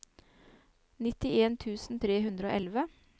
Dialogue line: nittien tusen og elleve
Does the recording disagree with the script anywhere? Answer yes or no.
yes